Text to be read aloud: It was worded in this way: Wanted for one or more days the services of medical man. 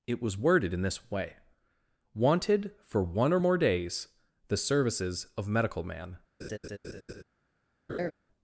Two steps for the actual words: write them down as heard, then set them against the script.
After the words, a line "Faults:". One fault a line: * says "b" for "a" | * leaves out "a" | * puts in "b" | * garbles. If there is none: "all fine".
It was worded in this way: Wanted for one or more days the services of medical man.
Faults:
all fine